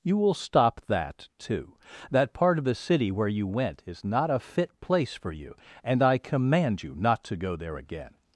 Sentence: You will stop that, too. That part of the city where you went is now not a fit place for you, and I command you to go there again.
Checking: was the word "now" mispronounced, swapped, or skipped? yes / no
yes